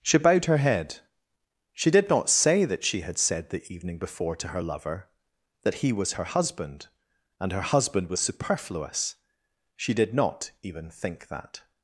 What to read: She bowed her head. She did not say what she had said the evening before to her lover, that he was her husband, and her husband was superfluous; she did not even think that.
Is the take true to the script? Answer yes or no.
no